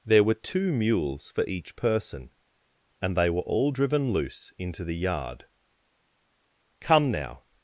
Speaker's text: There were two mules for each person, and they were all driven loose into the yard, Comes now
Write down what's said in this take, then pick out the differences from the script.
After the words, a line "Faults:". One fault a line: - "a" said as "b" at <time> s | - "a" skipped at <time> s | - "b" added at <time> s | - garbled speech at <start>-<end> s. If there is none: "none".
There were two mules for each person, and they were all driven loose into the yard, Come now
Faults:
- "Comes" said as "Come" at 6.8 s